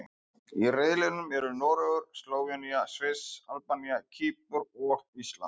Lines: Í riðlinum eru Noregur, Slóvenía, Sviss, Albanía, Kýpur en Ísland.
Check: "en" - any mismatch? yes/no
yes